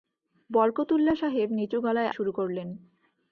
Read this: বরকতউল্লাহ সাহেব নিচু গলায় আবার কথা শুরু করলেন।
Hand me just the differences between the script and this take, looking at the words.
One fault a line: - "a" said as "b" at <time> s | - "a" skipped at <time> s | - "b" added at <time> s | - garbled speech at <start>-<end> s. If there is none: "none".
- "আবার কথা" skipped at 2.1 s